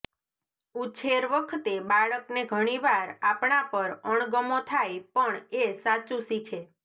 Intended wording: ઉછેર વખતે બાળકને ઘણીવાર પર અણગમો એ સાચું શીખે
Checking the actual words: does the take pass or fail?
fail